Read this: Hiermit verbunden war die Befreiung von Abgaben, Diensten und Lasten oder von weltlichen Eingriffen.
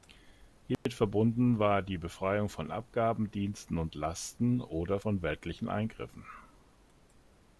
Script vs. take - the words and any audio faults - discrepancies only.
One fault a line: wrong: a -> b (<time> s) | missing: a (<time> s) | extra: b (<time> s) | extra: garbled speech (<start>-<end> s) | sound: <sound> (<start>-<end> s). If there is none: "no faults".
sound: dropout (0.7-0.9 s)